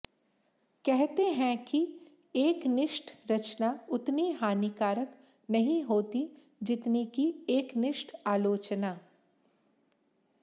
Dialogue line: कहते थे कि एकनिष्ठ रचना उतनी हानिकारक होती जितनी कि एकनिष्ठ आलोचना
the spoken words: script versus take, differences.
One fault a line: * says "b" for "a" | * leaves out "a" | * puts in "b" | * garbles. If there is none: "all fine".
* says "हैं" for "थे"
* puts in "नहीं"